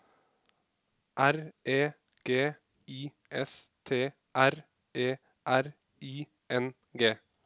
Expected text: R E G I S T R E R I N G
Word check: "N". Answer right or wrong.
right